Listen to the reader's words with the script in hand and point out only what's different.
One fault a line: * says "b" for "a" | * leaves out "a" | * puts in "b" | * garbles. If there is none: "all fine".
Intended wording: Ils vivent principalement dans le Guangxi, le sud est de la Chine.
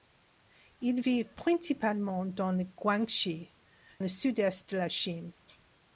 all fine